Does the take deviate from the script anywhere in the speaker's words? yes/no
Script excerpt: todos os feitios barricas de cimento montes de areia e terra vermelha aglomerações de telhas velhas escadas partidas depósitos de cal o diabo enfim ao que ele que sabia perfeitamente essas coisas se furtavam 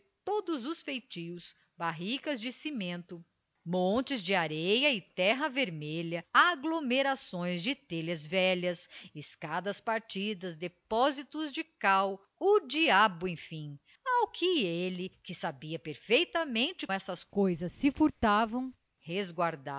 no